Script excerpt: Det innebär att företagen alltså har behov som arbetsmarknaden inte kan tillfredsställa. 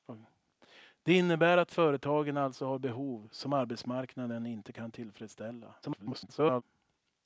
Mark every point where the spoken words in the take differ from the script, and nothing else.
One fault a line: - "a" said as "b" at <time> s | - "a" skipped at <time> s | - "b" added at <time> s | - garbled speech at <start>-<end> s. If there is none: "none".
- garbled speech at 5.8-6.6 s